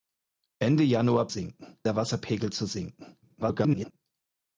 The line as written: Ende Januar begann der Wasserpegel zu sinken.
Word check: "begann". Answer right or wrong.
wrong